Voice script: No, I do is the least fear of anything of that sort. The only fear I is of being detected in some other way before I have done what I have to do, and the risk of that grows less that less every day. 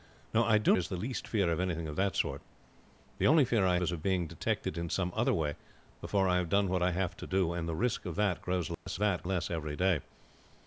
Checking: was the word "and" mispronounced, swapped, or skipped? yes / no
no